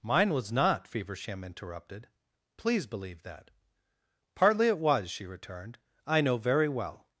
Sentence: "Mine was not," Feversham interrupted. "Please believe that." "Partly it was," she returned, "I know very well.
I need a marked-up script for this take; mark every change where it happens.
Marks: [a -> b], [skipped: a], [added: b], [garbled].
"Mine was not," Feversham interrupted. "Please believe that." "Partly it was," she returned, "I know very well.